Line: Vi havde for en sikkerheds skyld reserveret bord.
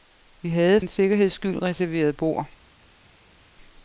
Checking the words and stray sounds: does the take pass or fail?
fail